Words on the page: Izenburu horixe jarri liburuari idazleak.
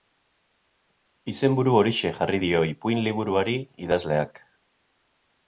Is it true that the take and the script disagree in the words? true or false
true